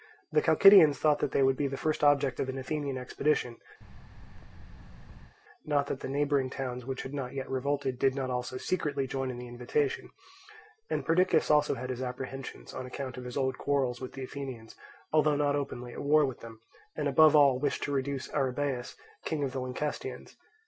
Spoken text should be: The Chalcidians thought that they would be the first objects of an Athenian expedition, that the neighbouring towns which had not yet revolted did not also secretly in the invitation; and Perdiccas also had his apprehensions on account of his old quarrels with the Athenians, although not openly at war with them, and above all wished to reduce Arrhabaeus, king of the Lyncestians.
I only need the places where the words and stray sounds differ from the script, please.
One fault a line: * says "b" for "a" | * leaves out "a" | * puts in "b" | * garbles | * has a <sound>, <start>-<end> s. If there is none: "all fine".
* has a thud, 3.8-5.4 s
* puts in "not"
* puts in "join"